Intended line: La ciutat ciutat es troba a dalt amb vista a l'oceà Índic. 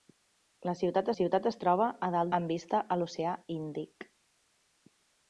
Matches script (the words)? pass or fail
pass